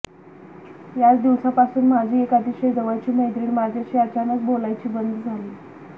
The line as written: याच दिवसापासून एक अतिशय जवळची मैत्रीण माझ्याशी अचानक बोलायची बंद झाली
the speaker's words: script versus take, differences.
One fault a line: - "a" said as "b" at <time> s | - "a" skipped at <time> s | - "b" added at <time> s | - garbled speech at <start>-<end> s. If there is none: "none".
- "माझी" added at 1.9 s